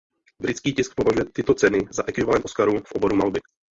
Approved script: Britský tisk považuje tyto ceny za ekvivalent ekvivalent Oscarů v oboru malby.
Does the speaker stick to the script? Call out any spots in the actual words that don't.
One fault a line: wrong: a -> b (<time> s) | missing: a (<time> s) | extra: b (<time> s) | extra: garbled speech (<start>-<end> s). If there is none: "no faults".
missing: ekvivalent (2.5 s)